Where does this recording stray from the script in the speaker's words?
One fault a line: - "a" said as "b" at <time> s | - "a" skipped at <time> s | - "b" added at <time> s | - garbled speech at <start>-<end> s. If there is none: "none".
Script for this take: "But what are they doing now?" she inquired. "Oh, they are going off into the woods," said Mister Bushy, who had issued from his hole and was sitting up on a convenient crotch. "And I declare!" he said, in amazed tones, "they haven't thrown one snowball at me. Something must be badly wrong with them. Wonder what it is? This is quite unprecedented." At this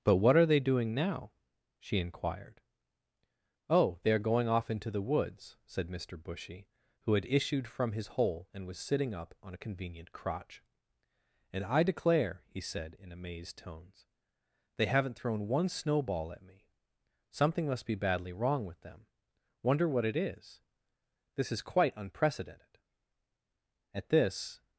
none